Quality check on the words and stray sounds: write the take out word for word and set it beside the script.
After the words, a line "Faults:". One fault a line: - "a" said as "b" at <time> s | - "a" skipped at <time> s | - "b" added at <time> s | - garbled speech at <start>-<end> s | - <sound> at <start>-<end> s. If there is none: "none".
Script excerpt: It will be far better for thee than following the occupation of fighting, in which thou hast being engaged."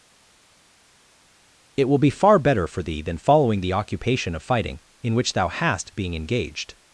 It will be far better for thee than following the occupation of fighting, in which thou hast being engaged."
Faults:
none